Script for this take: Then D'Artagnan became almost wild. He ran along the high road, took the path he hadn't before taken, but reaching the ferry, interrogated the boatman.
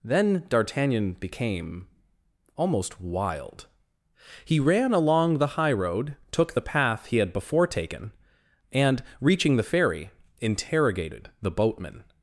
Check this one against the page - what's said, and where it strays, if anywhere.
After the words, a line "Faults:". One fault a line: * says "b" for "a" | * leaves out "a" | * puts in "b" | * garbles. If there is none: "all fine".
Then D'Artagnan became almost wild. He ran along the high road, took the path he had before taken, and reaching the ferry, interrogated the boatman.
Faults:
* says "had" for "hadn't"
* says "and" for "but"